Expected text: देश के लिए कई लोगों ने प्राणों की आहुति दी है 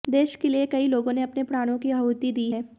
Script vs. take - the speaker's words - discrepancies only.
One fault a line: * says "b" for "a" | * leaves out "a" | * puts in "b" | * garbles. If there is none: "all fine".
* puts in "अपने"